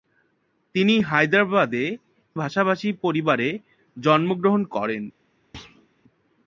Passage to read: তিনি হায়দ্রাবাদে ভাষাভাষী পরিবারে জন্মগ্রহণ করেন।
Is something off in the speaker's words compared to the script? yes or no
no